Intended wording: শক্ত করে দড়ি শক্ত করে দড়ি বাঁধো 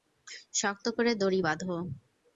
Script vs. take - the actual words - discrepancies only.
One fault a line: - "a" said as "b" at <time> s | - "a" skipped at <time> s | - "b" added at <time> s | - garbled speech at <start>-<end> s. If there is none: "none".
- "শক্ত করে দড়ি" skipped at 1.4 s